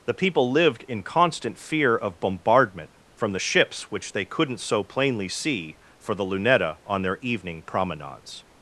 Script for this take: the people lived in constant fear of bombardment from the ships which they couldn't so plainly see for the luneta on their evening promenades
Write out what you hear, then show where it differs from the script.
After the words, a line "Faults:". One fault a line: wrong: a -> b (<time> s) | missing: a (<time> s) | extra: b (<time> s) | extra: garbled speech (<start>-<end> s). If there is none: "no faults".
the people lived in constant fear of bombardment from the ships which they couldn't so plainly see for the luneta on their evening promenades
Faults:
no faults